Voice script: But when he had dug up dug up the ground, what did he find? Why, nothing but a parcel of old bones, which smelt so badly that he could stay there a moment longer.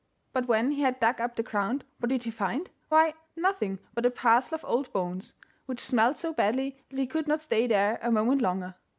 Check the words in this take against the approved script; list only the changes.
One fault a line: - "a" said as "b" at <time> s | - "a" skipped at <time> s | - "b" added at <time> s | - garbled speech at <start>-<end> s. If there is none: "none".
- "dug up" skipped at 1.4 s
- "not" added at 7.3 s